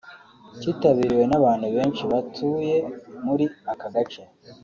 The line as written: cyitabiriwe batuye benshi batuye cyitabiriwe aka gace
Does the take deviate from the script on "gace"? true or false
false